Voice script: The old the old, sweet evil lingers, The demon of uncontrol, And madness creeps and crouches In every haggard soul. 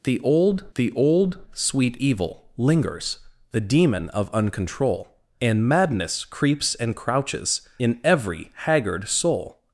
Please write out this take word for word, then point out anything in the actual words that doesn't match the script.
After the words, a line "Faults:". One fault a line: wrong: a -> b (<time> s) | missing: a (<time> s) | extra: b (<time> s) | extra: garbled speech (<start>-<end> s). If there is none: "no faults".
The old the old, sweet evil lingers, The demon of uncontrol, And madness creeps and crouches In every haggard soul.
Faults:
no faults